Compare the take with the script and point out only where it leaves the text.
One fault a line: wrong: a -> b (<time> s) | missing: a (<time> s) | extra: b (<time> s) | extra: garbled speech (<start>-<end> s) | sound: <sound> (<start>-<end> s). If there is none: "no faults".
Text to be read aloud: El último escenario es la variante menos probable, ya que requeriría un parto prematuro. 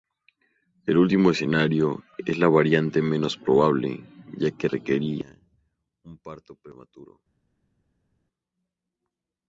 no faults